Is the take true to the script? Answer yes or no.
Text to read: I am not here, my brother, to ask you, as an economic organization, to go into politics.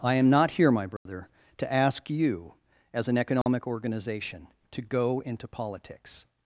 yes